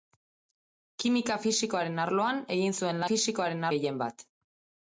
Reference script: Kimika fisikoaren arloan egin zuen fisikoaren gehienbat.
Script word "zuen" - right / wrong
right